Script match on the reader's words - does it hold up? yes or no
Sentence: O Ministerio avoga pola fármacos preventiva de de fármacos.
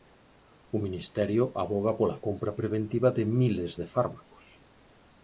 no